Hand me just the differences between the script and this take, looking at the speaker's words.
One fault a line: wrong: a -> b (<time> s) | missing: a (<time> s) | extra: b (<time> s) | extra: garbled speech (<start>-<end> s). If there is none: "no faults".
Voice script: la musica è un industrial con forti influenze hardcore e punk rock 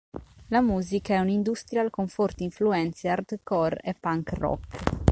no faults